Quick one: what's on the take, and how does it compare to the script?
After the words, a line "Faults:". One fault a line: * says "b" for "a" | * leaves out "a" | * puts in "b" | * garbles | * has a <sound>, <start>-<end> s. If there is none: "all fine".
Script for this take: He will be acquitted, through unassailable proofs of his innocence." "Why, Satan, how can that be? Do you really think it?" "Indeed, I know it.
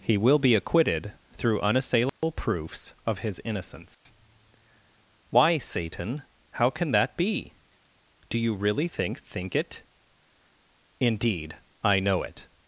He will be acquitted, through unassailable proofs of his innocence." "Why, Satan, how can that be? Do you really think think it?" "Indeed, I know it.
Faults:
* has a dropout, 2.1-2.2 s
* has a dropout, 3.9-4.1 s
* puts in "think"